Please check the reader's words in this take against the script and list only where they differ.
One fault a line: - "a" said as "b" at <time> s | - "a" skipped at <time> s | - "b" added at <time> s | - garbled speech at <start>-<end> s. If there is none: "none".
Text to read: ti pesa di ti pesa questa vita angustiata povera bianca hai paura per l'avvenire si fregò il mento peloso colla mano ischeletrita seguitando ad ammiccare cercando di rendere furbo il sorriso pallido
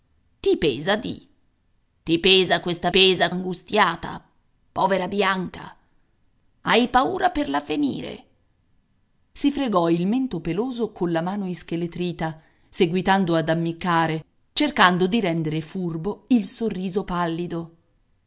- "vita" said as "pesa" at 2.9 s